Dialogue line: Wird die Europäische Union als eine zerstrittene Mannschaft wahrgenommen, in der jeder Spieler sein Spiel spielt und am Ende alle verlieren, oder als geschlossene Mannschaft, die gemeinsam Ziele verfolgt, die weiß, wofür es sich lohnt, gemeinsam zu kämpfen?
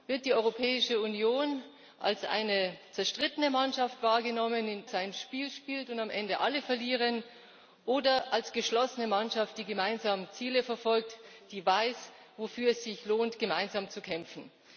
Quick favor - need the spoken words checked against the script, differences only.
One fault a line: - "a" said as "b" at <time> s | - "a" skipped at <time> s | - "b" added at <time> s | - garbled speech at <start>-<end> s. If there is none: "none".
- "der jeder Spieler" skipped at 4.8 s